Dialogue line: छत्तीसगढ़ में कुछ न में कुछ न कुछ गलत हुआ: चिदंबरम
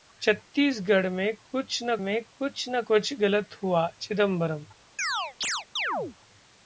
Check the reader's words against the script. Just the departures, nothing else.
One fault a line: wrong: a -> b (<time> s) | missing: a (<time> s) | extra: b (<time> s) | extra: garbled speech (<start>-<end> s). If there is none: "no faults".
no faults